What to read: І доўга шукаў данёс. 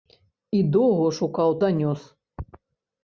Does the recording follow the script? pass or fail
pass